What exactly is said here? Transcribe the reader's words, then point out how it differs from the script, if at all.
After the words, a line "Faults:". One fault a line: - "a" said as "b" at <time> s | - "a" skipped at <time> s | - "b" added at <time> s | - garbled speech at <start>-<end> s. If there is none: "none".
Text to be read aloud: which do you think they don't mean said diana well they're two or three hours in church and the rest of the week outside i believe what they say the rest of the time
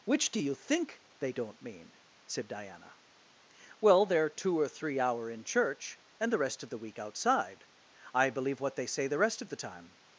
which do you think they don't mean said diana well they're two or three hour in church and the rest of the week outside i believe what they say the rest of the time
Faults:
- "hours" said as "hour" at 5.0 s